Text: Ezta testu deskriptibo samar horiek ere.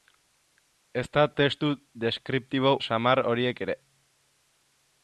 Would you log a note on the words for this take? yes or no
no